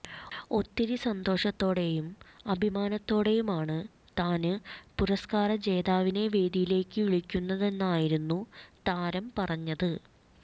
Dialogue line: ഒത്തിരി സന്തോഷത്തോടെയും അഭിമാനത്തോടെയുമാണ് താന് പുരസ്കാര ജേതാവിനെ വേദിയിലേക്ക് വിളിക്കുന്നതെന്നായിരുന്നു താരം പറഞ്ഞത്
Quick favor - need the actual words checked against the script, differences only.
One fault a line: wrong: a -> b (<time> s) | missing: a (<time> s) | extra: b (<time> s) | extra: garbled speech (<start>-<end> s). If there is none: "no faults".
no faults